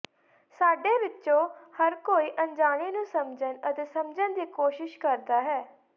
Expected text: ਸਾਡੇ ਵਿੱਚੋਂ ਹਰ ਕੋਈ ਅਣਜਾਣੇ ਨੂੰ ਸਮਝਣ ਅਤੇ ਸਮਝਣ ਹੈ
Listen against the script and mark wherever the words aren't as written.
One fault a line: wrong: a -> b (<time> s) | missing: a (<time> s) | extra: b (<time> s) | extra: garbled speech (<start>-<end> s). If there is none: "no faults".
extra: ਦੀ ਕੋਸ਼ਿਸ਼ ਕਰਦਾ (4.3 s)